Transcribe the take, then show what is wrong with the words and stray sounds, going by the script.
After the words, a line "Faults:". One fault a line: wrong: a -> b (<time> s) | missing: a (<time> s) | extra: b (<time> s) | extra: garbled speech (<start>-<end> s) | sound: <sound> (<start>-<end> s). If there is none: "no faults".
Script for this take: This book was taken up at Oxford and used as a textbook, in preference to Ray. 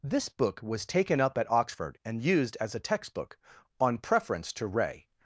This book was taken up at Oxford and used as a textbook, on preference to Ray.
Faults:
wrong: in -> on (3.8 s)